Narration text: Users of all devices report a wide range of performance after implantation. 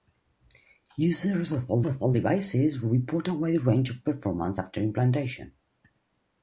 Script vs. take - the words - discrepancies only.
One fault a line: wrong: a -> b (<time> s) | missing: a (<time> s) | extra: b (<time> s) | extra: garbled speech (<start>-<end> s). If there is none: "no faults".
extra: of all (1.8 s)